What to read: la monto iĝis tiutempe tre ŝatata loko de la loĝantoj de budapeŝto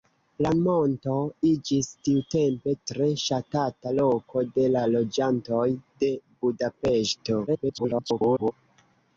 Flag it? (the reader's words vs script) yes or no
yes